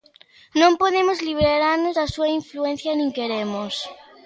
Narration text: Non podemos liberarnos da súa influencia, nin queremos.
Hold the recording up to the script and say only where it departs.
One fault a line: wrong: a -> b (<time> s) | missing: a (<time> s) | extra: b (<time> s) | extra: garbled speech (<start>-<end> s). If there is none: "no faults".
no faults